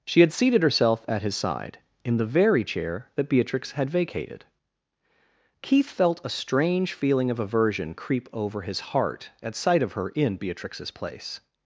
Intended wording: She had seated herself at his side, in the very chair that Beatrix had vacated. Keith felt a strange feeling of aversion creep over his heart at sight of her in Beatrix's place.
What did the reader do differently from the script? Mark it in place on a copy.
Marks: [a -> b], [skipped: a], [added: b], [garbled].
She had seated herself at his side, in the very chair that Beatrix had vacated. Keith felt a strange feeling of aversion creep over his heart at sight of her in Beatrix's place.